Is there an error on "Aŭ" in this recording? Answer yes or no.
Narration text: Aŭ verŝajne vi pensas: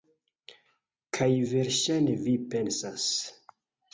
yes